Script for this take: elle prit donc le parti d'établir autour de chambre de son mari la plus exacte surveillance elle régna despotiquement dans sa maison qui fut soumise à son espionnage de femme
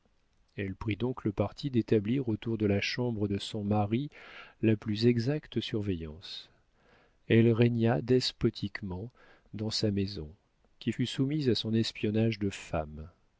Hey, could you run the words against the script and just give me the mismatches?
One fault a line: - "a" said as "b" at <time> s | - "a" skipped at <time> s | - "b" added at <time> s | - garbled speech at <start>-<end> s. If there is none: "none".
- "la" added at 2.6 s